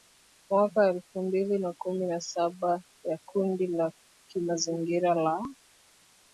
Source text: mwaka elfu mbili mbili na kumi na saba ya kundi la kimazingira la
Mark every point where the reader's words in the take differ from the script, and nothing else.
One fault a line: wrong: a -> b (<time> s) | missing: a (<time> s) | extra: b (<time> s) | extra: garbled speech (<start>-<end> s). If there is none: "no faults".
missing: mbili (1.6 s)